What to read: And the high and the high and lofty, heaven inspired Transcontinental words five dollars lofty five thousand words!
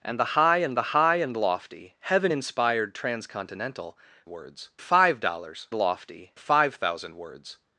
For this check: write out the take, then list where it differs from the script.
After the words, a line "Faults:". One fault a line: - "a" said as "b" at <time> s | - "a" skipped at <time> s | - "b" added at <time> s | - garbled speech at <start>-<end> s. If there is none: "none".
And the high and the high and lofty, heaven inspired Transcontinental words five dollars lofty five thousand words!
Faults:
none